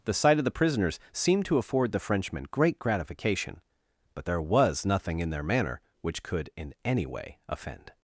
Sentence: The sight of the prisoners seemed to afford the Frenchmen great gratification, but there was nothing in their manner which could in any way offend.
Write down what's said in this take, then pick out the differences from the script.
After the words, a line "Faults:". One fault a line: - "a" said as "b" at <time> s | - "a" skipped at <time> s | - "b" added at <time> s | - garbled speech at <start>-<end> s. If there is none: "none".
The sight of the prisoners seemed to afford the Frenchmen great gratification, but there was nothing in their manner which could in any way offend.
Faults:
none